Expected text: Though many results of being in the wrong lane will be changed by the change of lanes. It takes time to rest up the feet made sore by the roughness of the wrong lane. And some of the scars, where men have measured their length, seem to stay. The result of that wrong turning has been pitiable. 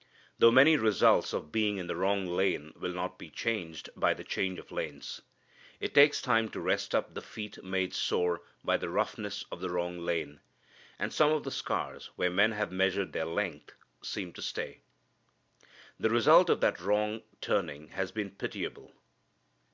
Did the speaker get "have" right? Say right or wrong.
right